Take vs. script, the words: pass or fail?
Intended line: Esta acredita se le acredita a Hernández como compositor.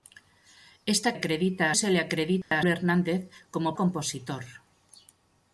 pass